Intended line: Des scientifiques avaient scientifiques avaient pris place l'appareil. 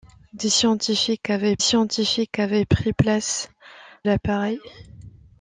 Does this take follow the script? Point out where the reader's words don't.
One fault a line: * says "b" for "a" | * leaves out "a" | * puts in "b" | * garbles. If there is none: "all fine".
all fine